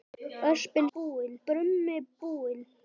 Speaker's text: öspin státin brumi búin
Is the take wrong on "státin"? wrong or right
wrong